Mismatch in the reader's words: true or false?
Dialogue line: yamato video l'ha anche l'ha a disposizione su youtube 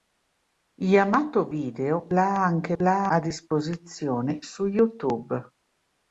false